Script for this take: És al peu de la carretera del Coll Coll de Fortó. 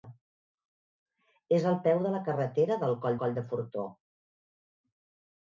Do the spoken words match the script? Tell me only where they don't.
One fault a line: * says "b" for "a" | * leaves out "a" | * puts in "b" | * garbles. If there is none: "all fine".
all fine